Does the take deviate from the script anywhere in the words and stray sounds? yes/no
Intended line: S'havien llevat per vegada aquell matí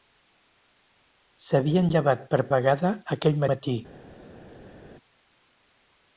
no